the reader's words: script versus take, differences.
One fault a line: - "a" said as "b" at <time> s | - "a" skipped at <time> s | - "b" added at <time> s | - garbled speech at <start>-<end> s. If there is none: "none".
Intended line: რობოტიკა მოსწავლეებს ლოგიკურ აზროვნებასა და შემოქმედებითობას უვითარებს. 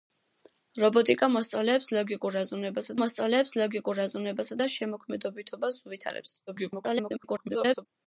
- "მოსწავლეებს ლოგიკურ აზროვნებასა" added at 3.0 s
- garbled speech at 6.5-7.9 s